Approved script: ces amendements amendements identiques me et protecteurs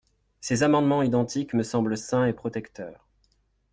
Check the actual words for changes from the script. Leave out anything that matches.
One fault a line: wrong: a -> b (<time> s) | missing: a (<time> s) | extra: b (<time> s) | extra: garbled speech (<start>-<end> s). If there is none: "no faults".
missing: amendements (1.0 s)
extra: semblent sains (1.6 s)